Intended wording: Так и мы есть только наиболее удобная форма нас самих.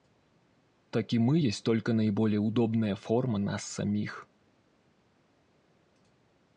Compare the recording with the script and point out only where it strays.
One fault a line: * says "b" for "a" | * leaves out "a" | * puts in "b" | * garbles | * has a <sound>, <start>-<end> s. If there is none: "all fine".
all fine